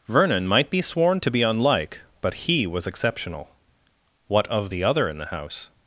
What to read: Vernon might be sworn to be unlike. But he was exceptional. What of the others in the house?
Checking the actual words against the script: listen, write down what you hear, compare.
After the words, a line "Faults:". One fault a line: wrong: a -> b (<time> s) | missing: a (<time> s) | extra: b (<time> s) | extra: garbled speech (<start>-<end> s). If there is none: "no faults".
Vernon might be sworn to be unlike. But he was exceptional. What of the other in the house?
Faults:
wrong: others -> other (4.8 s)